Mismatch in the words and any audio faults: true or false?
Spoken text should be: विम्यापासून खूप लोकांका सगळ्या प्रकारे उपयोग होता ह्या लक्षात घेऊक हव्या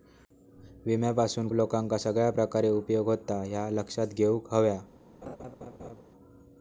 true